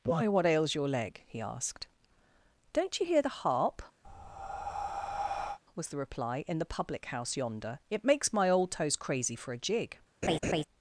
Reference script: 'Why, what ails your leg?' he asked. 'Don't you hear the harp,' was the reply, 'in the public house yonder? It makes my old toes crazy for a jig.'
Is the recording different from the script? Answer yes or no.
no